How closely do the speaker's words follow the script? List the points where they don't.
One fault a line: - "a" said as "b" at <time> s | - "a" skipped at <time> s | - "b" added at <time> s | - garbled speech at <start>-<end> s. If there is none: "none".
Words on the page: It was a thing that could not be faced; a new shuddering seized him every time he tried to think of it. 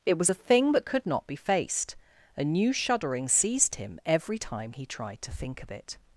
none